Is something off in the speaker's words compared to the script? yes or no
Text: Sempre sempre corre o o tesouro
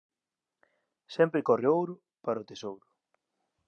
yes